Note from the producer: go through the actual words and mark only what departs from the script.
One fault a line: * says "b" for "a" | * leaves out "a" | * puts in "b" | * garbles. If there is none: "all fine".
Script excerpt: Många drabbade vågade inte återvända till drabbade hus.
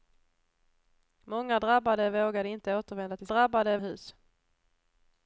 all fine